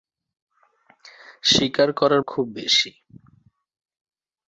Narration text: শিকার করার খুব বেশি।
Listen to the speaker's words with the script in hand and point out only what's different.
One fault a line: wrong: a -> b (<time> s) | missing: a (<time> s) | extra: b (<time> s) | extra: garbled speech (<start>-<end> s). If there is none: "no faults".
no faults